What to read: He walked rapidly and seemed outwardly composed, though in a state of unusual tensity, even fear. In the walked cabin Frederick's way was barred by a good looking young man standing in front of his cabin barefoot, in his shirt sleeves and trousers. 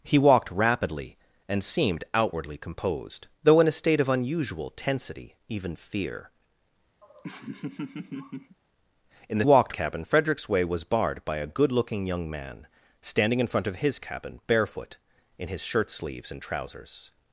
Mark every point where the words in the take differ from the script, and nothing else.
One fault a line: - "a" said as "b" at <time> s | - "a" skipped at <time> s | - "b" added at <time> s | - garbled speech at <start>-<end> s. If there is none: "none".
none